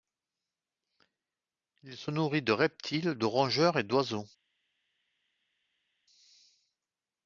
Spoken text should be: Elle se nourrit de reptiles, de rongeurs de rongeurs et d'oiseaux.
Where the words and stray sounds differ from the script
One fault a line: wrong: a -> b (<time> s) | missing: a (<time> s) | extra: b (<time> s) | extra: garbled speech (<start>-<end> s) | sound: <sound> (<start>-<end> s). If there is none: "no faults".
wrong: Elle -> Il (1.8 s)
missing: de rongeurs (3.8 s)